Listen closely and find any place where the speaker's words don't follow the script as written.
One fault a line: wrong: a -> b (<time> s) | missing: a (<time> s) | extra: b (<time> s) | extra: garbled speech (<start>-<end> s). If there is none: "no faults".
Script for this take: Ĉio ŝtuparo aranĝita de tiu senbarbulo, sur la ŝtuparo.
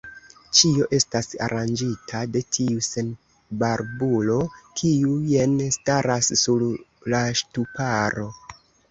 wrong: ŝtuparo -> estas (1.0 s)
extra: kiu jen staras (4.8 s)